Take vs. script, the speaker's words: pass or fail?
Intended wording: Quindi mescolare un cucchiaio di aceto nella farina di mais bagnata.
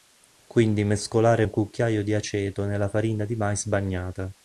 pass